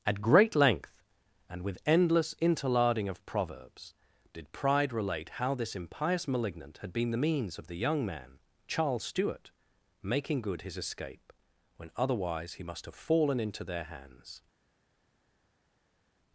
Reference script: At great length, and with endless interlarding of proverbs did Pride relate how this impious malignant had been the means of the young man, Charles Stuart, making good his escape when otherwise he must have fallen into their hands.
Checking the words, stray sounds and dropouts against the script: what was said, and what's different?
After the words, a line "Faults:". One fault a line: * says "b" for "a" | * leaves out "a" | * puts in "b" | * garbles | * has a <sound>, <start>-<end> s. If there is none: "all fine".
At great length, and with endless interlarding of proverbs did Pride relate how this impious malignant had been the means of the young man, Charles Stuart, making good his escape when otherwise he must have fallen into their hands.
Faults:
all fine